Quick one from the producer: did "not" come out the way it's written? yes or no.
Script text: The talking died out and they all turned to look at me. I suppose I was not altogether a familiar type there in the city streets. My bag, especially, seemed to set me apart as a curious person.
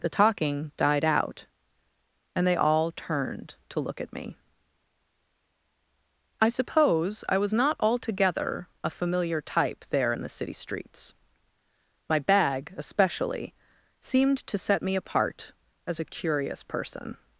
yes